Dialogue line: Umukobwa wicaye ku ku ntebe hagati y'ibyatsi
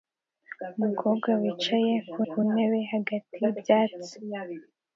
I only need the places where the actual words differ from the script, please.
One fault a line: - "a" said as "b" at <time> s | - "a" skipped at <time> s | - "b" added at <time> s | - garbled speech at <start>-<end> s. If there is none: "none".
none